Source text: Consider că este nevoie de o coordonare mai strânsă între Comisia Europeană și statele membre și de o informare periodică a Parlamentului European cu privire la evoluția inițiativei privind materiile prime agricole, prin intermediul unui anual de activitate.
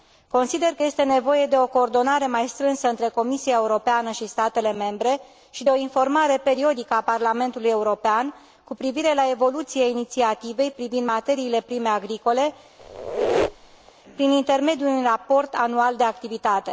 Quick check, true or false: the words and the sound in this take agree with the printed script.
false